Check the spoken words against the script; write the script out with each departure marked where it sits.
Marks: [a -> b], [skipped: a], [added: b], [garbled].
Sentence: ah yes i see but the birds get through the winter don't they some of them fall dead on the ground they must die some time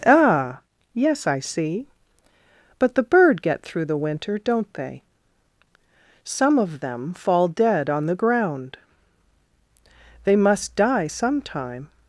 ah yes i see but the [birds -> bird] get through the winter don't they some of them fall dead on the ground they must die some time